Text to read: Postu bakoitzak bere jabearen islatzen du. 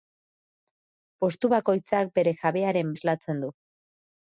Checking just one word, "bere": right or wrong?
right